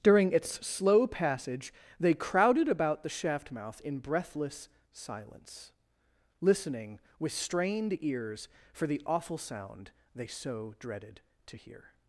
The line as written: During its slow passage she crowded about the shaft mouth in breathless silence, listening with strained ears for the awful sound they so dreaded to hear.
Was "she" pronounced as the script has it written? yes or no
no